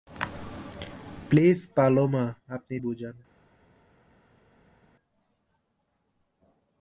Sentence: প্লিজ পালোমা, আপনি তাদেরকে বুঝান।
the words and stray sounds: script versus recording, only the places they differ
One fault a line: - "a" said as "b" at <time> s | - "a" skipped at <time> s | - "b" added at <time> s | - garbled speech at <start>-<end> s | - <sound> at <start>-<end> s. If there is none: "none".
- "তাদেরকে" skipped at 2.8 s